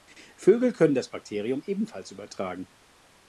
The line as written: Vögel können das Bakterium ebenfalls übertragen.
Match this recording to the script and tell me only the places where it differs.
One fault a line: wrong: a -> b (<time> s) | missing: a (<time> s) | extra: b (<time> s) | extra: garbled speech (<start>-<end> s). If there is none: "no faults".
no faults